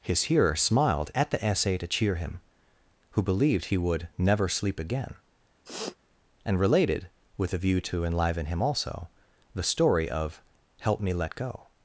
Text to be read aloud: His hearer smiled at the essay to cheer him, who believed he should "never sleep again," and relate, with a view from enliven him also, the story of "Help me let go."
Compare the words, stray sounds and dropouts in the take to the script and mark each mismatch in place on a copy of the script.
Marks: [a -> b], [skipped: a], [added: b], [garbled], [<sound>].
His hearer smiled at the essay to cheer him, who believed he [should -> would] "never sleep again," [sniff] and [relate, -> related] with a view [from -> to] enliven him also, the story of "Help me let go."